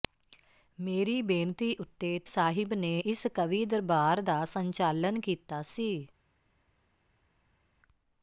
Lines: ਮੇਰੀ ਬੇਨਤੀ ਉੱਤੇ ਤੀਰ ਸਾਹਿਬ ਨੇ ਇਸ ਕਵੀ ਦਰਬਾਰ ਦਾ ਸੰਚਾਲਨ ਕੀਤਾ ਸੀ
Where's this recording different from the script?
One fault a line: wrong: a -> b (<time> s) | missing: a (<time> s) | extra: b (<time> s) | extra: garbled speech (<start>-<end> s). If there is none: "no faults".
missing: ਤੀਰ (2.2 s)